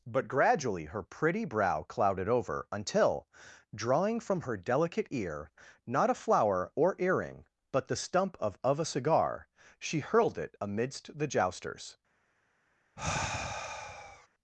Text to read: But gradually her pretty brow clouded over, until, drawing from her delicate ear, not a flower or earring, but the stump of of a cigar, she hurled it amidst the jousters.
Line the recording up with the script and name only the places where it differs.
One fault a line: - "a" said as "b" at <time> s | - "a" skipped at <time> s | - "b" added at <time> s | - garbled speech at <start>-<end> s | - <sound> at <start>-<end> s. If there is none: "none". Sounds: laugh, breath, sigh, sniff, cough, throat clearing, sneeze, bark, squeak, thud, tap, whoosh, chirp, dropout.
- sigh at 13.0-14.3 s